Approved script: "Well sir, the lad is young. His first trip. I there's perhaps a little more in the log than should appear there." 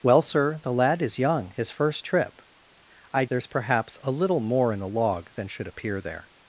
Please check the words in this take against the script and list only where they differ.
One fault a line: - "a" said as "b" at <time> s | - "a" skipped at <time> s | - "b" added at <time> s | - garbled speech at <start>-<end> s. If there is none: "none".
none